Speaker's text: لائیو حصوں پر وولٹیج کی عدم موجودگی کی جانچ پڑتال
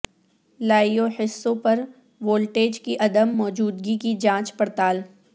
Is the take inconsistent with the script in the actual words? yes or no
no